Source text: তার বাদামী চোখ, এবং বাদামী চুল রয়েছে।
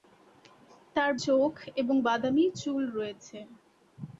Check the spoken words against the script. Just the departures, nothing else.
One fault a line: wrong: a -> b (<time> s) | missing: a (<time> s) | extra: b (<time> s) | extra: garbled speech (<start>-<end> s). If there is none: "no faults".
missing: বাদামী (1.1 s)